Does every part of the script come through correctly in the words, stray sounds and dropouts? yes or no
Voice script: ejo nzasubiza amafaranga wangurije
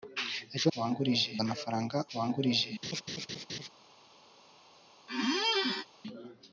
no